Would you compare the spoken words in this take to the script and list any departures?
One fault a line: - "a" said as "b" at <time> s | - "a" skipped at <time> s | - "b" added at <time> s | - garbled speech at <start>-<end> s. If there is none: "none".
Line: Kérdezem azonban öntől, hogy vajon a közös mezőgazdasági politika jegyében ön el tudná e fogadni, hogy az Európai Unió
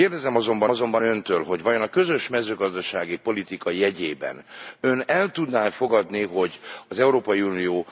- "azonban" added at 0.7 s